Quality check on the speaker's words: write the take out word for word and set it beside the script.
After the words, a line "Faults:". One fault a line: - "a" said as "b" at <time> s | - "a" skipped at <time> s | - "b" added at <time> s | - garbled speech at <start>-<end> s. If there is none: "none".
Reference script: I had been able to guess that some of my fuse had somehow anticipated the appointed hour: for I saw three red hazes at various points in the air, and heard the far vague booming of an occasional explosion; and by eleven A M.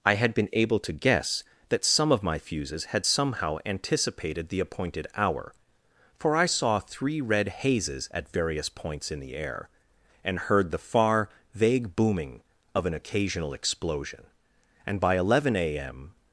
I had been able to guess that some of my fuses had somehow anticipated the appointed hour: for I saw three red hazes at various points in the air, and heard the far vague booming of an occasional explosion; and by eleven A M.
Faults:
- "fuse" said as "fuses" at 2.4 s